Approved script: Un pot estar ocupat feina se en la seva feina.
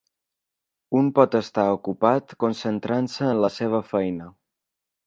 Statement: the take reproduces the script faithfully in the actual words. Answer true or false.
false